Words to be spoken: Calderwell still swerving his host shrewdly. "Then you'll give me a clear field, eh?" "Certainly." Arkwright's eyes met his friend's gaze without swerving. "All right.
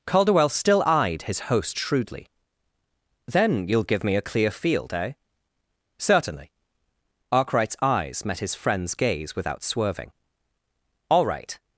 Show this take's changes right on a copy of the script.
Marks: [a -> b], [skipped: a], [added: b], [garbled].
Calderwell still [swerving -> eyed] his host shrewdly. "Then you'll give me a clear field, eh?" "Certainly." Arkwright's eyes met his friend's gaze without swerving. "All right.